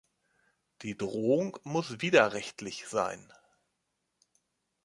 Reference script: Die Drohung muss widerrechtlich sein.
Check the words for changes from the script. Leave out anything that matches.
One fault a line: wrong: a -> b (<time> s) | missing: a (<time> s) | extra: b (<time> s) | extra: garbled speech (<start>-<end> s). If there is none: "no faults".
no faults